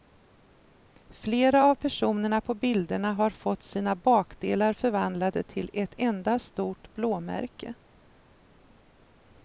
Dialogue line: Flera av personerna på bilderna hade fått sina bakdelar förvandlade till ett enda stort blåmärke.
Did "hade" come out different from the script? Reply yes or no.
yes